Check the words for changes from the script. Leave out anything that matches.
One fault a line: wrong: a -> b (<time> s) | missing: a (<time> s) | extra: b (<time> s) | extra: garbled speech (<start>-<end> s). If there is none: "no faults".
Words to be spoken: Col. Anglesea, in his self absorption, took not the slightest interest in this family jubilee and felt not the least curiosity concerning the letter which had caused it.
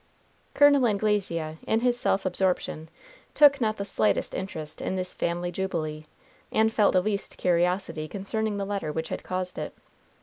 missing: not (7.0 s)